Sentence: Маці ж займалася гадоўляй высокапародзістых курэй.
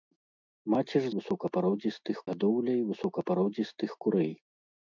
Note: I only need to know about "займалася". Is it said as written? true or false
false